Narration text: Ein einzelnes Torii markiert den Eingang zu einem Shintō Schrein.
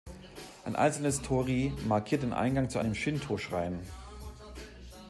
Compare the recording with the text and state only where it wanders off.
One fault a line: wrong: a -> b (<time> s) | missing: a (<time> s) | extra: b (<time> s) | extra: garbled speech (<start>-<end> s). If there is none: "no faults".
no faults